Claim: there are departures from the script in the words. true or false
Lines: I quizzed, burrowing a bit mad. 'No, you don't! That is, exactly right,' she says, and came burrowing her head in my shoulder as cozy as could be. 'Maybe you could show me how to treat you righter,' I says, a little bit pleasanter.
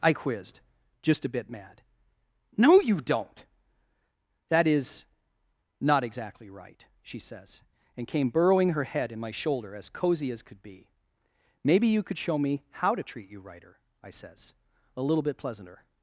true